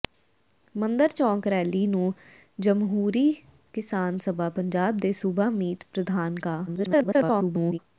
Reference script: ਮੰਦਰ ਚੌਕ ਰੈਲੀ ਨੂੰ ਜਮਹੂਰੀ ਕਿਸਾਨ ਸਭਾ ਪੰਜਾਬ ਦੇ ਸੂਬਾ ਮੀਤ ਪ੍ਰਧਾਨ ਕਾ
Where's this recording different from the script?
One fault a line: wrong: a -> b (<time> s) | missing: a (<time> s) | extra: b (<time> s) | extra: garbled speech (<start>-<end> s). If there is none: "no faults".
extra: garbled speech (6.7-7.8 s)